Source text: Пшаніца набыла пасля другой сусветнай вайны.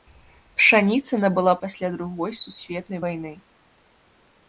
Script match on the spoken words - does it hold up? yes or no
yes